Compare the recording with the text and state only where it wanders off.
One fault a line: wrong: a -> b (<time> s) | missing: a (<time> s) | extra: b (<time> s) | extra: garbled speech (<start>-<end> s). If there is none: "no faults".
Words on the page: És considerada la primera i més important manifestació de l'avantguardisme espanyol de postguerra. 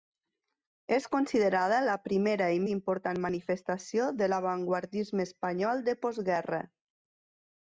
missing: més (2.6 s)